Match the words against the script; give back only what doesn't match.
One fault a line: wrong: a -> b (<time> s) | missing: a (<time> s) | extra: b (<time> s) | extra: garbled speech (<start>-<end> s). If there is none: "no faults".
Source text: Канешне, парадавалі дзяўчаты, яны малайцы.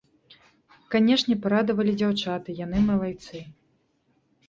no faults